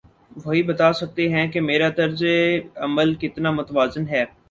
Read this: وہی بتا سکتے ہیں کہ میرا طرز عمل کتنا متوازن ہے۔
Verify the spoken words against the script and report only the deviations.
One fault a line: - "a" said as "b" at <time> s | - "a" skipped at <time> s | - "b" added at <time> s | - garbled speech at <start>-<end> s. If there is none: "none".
none